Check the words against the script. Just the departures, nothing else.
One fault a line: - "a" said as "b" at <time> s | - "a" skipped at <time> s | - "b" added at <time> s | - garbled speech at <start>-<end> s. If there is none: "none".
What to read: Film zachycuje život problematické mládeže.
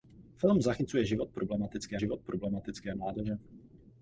- "život problematické" added at 2.0 s